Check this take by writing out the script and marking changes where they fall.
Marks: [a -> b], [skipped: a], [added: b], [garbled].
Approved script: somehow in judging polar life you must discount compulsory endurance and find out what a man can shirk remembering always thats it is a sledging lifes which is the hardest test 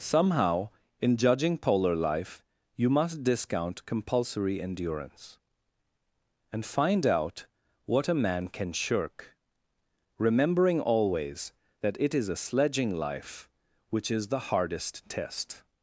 somehow in judging polar life you must discount compulsory endurance and find out what a man can shirk remembering always [thats -> that] it is a sledging [lifes -> life] which is the hardest test